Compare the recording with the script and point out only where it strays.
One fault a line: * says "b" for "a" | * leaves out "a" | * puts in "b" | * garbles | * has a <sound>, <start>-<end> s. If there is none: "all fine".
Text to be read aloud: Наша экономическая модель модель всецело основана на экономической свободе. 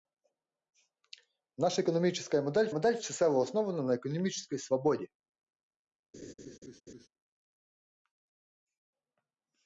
* has a laugh, 6.1-7.1 s